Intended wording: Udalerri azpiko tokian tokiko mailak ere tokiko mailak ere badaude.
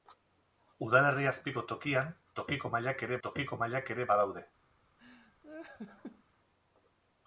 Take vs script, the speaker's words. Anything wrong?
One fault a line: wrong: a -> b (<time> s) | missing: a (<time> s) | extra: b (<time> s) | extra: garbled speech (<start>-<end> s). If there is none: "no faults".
no faults